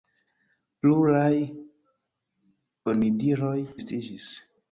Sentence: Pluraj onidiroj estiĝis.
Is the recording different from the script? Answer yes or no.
no